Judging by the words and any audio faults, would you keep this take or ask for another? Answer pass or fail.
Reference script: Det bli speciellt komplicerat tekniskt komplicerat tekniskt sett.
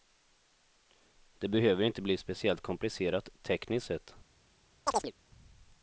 fail